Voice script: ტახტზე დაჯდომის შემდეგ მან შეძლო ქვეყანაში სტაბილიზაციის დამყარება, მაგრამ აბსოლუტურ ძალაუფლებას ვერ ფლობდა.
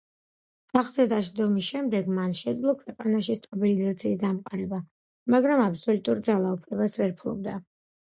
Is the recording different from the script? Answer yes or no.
no